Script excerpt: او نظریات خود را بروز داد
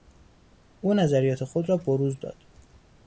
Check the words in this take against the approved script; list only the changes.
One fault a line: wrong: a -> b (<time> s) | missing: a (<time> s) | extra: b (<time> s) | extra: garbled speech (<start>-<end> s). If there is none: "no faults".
no faults